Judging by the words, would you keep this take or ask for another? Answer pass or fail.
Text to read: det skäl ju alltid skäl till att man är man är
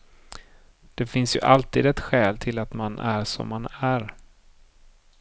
fail